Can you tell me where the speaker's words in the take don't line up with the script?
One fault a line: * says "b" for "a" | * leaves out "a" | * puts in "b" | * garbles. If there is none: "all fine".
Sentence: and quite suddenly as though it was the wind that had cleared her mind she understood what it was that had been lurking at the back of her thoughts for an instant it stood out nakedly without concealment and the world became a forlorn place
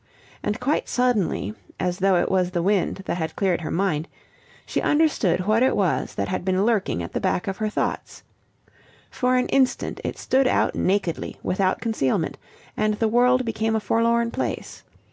all fine